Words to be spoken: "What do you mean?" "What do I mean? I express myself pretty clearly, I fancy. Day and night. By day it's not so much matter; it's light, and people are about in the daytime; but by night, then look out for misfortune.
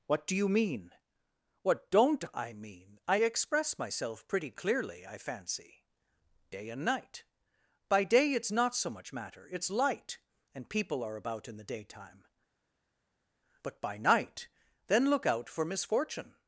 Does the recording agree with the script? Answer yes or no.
no